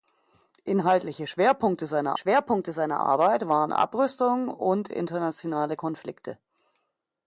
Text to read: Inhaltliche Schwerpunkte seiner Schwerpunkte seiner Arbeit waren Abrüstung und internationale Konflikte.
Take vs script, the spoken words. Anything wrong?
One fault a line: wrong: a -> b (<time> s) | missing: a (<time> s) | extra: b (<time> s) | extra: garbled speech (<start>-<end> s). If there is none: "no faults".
no faults